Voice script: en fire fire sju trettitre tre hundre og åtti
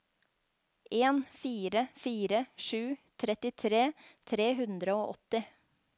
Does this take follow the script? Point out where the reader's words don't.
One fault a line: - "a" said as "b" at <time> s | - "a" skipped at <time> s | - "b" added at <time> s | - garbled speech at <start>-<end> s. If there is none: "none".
none